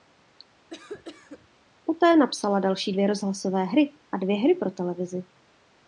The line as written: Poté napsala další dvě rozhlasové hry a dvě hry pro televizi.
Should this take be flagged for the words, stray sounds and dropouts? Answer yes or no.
yes